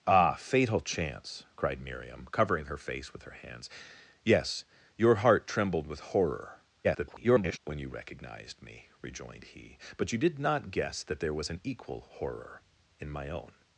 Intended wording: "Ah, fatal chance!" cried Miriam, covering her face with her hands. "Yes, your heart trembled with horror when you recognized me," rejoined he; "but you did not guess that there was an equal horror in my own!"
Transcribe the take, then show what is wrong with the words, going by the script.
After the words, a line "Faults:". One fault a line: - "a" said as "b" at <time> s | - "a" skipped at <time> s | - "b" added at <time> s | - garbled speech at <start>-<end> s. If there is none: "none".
"Ah, fatal chance!" cried Miriam, covering her face with her hands. "Yes, your heart trembled with horror [garbled] when you recognized me," rejoined he; "but you did not guess that there was an equal horror in my own!"
Faults:
- garbled speech at 6.8-7.6 s